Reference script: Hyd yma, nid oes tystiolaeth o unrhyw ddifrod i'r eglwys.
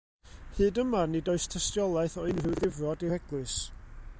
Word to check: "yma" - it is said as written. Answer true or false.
true